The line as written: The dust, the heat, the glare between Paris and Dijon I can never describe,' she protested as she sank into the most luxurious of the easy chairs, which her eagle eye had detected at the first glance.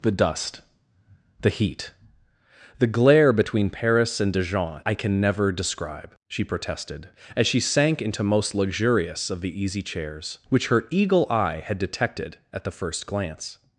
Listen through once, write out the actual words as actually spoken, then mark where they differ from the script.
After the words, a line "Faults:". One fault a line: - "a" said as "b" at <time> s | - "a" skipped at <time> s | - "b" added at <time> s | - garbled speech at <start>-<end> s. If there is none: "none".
The dust, the heat, the glare between Paris and Dijon I can never describe,' she protested as she sank into most luxurious of the easy chairs, which her eagle eye had detected at the first glance.
Faults:
- "the" skipped at 8.2 s